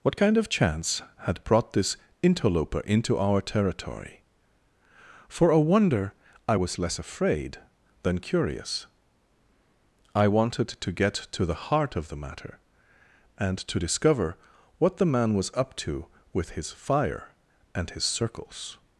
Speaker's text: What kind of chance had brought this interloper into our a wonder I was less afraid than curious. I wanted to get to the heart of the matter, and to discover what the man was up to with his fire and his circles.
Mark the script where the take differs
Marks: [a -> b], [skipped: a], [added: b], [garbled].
What kind of chance had brought this interloper into our [added: territory For] a wonder I was less afraid than curious. I wanted to get to the heart of the matter, and to discover what the man was up to with his fire and his circles.